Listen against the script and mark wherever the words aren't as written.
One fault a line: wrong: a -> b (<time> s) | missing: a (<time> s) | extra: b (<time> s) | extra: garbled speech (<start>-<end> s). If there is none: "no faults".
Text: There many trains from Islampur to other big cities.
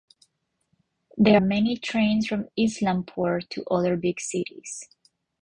no faults